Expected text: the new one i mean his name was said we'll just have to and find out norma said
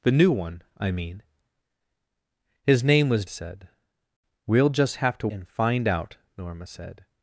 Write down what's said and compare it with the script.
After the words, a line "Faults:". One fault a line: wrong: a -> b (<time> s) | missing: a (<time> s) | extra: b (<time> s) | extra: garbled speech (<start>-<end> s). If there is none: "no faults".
the new one i mean his name was said we'll just have to and find out norma said
Faults:
no faults